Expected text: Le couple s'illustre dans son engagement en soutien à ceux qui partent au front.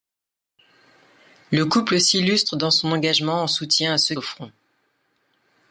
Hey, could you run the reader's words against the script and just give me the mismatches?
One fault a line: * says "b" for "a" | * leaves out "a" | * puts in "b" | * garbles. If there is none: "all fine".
* leaves out "qui partent"